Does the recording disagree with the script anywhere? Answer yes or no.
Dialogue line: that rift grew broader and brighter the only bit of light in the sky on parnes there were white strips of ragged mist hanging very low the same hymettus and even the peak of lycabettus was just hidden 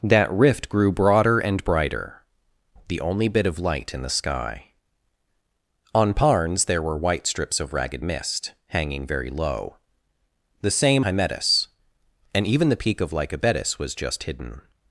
no